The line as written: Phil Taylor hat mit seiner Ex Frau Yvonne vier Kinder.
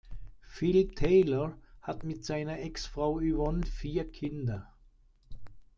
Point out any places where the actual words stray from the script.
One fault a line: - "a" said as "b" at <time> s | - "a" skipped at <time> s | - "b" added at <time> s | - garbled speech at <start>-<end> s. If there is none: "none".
none